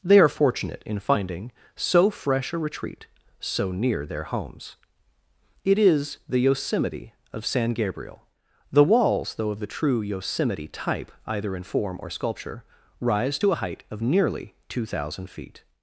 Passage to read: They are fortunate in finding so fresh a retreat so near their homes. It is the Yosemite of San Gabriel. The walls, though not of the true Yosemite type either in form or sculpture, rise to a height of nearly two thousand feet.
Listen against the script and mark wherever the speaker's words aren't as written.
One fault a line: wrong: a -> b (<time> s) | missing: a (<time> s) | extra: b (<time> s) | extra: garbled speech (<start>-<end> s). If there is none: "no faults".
missing: not (9.5 s)